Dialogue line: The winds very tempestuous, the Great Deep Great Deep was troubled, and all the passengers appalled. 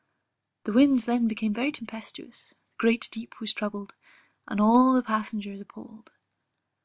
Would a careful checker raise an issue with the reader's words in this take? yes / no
yes